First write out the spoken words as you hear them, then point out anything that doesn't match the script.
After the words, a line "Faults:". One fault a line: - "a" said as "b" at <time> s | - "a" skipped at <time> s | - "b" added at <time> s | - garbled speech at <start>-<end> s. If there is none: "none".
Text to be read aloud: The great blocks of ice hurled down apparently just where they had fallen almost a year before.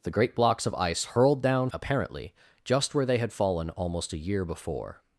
The great blocks of ice hurled down apparently just where they had fallen almost a year before.
Faults:
none